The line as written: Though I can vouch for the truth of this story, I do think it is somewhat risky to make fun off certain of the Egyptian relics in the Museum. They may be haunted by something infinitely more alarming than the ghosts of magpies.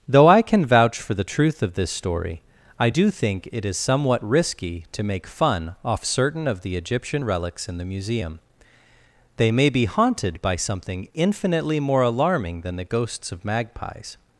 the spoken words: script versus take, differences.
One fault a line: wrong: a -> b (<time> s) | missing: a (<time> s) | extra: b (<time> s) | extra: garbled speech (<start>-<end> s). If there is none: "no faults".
no faults